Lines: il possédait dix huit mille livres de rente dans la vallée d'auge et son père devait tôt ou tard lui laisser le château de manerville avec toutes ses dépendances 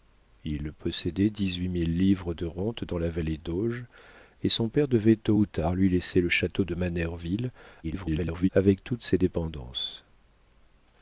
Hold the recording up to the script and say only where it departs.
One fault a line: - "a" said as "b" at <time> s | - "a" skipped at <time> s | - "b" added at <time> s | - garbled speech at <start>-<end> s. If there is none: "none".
- garbled speech at 7.8-8.5 s